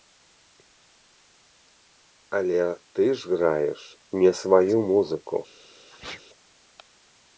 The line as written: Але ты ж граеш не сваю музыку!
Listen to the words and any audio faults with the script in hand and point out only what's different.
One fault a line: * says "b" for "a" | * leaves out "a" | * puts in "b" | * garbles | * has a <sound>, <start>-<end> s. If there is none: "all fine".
* has a sneeze, 5.9-6.2 s